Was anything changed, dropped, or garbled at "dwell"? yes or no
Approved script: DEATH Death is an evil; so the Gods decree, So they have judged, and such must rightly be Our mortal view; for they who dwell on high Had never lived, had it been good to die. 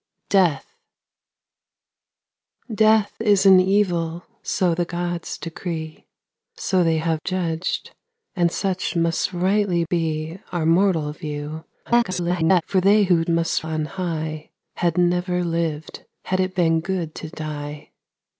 yes